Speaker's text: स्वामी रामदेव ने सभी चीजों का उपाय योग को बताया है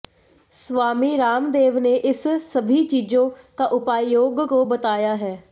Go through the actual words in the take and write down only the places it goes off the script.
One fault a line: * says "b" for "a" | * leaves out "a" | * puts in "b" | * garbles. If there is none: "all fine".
* puts in "इस"